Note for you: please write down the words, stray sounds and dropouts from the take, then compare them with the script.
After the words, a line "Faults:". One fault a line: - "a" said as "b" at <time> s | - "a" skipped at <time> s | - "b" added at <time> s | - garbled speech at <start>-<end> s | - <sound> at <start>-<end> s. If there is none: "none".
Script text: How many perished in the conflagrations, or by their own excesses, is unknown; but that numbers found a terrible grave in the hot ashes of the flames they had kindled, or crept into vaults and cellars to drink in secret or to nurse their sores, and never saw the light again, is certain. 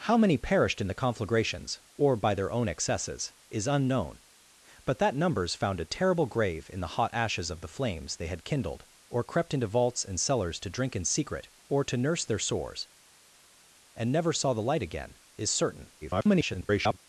How many perished in the conflagrations, or by their own excesses, is unknown; but that numbers found a terrible grave in the hot ashes of the flames they had kindled, or crept into vaults and cellars to drink in secret or to nurse their sores, and never saw the light again, is certain. [garbled]
Faults:
- garbled speech at 16.0-17.0 s